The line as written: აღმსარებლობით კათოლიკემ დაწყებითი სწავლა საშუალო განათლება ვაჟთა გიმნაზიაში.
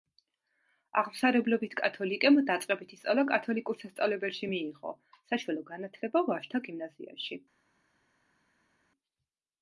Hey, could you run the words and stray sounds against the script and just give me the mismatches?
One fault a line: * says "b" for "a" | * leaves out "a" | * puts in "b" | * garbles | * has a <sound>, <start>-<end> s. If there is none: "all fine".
* puts in "კათოლიკურ სასწავლებელში მიიღო"